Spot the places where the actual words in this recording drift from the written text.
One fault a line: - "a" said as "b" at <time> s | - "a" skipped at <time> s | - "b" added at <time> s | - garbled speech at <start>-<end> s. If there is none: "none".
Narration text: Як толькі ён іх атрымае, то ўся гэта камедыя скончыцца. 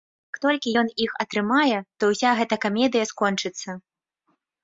none